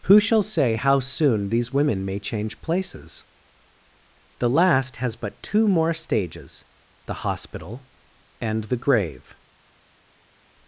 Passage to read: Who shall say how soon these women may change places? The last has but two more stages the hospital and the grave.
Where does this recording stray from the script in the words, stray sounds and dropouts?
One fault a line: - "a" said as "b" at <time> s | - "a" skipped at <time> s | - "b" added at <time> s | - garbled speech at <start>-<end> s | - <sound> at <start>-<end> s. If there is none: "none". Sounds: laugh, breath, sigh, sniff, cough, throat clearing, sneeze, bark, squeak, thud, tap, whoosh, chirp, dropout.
none